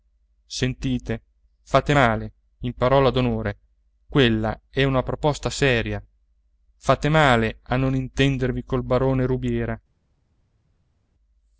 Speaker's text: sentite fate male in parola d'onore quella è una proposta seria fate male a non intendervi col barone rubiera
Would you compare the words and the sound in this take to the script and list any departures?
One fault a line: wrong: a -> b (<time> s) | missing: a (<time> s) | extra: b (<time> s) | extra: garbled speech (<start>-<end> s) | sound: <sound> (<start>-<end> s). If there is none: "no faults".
no faults